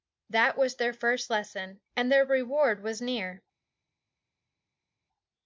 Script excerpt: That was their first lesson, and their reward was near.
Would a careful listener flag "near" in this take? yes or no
no